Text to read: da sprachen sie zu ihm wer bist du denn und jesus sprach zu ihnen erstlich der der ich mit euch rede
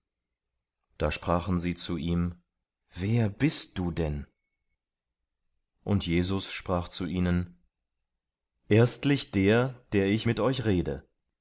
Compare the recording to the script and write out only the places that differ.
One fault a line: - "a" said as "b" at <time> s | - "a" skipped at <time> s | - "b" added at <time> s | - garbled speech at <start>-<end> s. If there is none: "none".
none